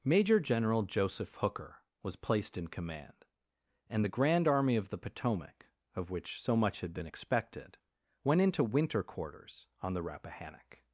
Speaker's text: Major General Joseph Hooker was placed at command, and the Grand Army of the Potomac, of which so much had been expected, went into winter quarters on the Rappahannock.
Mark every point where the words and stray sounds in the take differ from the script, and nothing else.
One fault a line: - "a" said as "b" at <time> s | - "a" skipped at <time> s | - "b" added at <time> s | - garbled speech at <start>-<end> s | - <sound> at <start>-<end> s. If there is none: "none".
- "at" said as "in" at 2.6 s